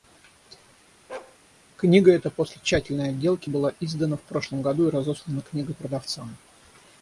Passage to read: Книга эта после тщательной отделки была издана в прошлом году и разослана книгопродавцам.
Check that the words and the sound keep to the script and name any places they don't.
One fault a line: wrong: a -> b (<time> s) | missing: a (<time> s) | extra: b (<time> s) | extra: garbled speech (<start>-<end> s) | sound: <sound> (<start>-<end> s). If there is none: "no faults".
sound: bark (1.1-1.4 s)